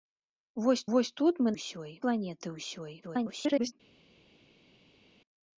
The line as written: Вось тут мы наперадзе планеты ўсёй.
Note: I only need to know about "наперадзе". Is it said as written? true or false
false